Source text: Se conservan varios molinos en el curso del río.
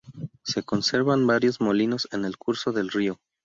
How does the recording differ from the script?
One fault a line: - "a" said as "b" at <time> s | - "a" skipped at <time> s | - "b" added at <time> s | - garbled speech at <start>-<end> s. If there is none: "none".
none